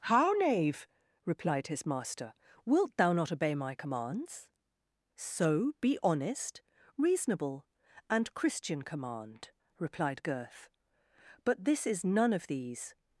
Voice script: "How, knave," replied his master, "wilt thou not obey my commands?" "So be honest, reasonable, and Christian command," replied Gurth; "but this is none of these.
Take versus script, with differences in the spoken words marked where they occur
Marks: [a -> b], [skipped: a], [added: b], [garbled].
"How, knave," replied his master, "wilt thou not obey my commands?" "So be honest, reasonable, and Christian command," replied Gurth; "but this is none of these.